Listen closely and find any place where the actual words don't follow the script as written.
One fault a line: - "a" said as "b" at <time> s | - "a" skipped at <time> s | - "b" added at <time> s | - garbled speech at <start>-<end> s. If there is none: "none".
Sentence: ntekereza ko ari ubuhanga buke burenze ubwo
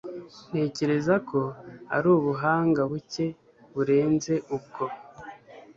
none